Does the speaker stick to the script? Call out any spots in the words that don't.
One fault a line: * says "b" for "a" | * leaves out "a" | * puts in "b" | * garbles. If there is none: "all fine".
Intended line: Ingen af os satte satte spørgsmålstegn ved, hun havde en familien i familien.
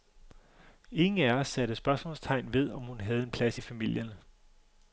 * leaves out "satte"
* puts in "om"
* says "plads" for "familien"